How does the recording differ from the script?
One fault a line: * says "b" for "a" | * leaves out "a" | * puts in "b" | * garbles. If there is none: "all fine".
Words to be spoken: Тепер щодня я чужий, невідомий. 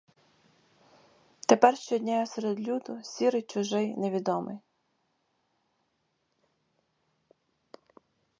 * puts in "серед люду сірий"